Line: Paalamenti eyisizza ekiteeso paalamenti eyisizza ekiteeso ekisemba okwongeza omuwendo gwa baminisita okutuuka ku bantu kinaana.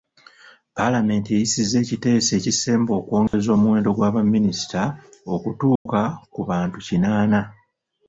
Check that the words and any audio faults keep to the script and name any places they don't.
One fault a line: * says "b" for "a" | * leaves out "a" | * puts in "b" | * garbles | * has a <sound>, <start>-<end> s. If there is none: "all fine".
* leaves out "paalamenti eyisizza ekiteeso"
* has a dropout, 3.3-3.3 s
* has a dropout, 5.8-5.9 s